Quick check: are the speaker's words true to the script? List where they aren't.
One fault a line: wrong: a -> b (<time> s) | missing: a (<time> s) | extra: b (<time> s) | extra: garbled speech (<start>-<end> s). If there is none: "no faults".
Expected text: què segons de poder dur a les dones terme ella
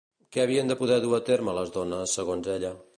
wrong: segons -> havien (0.4 s)
extra: terme (1.3 s)
wrong: terme -> segons (2.2 s)